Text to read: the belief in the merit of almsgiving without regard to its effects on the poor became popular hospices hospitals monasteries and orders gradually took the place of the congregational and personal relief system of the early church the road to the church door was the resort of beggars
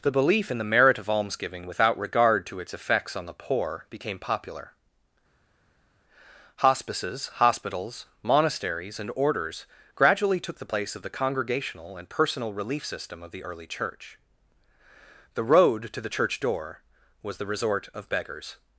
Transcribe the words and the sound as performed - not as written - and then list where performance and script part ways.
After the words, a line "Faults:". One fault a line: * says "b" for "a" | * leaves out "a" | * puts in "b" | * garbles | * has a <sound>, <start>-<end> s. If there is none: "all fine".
the belief in the merit of almsgiving without regard to its effects on the poor became popular hospices hospitals monasteries and orders gradually took the place of the congregational and personal relief system of the early church the road to the church door was the resort of beggars
Faults:
all fine